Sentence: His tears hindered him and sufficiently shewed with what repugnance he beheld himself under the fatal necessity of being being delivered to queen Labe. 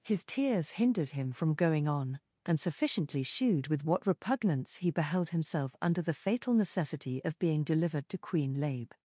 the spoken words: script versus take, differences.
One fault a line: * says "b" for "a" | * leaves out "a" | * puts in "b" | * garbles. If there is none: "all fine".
* puts in "from going on"
* leaves out "being"